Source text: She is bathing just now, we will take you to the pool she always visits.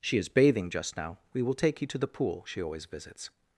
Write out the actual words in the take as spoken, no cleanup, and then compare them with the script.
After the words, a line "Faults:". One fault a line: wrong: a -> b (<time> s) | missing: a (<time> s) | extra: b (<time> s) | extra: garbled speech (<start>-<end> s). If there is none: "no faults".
She is bathing just now, we will take you to the pool she always visits.
Faults:
no faults